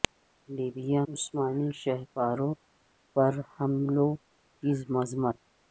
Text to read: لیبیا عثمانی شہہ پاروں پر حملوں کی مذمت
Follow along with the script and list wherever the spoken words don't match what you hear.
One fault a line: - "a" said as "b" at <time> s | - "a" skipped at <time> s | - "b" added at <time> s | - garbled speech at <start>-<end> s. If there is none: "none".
none